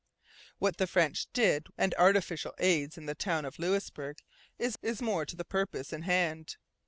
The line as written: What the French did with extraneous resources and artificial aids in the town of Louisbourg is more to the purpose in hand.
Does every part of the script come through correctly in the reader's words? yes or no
no